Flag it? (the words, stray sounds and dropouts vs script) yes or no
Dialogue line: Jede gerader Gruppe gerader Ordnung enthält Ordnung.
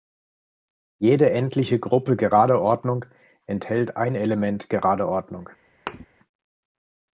yes